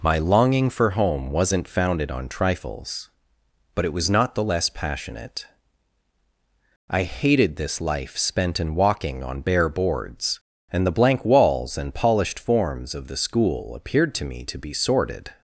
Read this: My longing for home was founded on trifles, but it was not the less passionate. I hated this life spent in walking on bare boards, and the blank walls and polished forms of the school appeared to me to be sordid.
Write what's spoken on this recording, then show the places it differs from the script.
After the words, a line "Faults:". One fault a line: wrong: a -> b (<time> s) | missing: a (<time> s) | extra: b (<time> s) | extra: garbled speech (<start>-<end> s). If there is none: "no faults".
My longing for home wasn't founded on trifles, but it was not the less passionate. I hated this life spent in walking on bare boards, and the blank walls and polished forms of the school appeared to me to be sordid.
Faults:
wrong: was -> wasn't (1.3 s)